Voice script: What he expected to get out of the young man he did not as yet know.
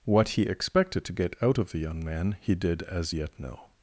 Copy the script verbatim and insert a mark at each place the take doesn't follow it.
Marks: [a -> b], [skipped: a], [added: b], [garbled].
What he expected to get out of the young man he did [skipped: not] as yet know.